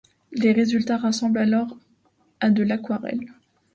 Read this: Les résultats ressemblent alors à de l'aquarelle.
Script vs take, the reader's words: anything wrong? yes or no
no